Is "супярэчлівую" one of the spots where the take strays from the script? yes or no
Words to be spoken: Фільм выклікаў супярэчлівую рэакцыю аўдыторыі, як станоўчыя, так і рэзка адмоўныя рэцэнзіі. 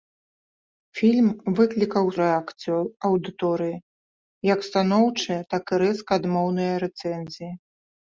yes